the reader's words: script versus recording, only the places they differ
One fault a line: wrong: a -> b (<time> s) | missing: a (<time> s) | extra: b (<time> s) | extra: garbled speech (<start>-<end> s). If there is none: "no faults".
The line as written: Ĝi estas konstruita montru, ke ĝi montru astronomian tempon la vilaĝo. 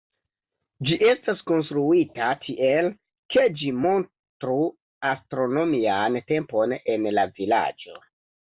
wrong: montru -> tiel (2.5 s)
extra: en (7.0 s)